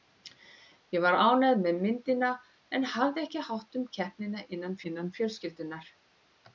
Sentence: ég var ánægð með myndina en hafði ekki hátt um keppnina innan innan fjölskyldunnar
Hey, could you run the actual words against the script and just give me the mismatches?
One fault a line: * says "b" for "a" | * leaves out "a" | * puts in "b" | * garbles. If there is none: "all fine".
all fine